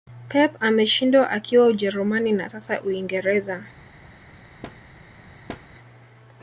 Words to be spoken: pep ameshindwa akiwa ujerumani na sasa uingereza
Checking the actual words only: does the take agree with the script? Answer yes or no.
yes